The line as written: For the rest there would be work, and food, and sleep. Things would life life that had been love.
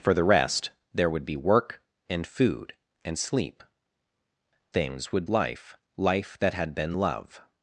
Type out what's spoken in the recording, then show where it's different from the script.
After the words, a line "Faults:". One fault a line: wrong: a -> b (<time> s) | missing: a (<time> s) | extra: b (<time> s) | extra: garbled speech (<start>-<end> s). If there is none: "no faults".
For the rest there would be work, and food, and sleep. Things would life life that had been love.
Faults:
no faults